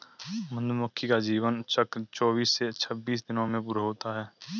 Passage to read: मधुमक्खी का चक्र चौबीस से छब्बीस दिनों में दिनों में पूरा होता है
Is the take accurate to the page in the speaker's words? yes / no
no